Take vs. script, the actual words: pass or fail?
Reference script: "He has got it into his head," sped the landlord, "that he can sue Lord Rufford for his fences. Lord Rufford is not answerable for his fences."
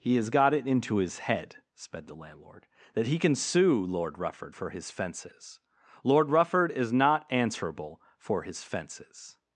pass